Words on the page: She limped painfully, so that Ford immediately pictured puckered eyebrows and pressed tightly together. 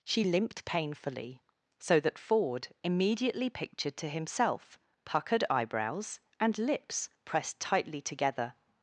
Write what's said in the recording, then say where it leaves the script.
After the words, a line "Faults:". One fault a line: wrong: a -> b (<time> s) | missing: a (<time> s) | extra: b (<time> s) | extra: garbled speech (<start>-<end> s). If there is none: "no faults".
She limped painfully, so that Ford immediately pictured to himself puckered eyebrows and lips pressed tightly together.
Faults:
extra: to himself (4.0 s)
extra: lips (6.6 s)